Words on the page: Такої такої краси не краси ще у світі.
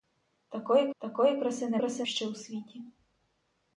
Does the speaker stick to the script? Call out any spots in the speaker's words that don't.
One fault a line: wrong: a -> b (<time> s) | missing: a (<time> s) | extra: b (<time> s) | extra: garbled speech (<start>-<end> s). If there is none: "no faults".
no faults